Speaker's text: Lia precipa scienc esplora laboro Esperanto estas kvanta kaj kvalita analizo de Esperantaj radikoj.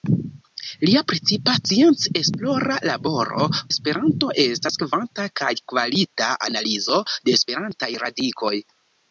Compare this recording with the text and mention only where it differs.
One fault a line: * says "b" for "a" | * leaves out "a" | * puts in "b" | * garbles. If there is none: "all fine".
all fine